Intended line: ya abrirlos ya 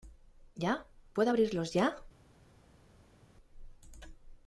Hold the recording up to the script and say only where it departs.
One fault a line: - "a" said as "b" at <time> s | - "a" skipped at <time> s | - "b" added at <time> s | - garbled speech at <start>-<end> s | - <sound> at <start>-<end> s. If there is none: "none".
- "puedo" added at 1.1 s